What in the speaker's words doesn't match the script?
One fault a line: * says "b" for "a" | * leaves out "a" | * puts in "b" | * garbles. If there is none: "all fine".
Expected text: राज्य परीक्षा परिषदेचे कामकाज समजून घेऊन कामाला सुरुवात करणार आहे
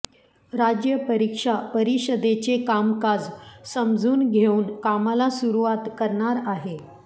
all fine